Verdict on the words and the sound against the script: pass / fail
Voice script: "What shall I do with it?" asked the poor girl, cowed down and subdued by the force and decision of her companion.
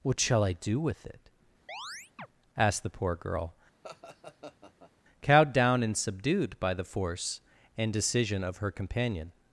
fail